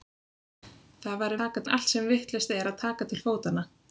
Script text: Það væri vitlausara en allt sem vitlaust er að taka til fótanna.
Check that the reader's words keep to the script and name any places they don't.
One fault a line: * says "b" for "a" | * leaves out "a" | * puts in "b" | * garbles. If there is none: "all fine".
* says "taka" for "vitlausara"